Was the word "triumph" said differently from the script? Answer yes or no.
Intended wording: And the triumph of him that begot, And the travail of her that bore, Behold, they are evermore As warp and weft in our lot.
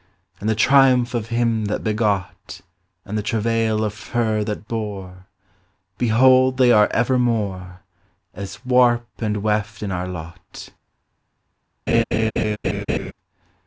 no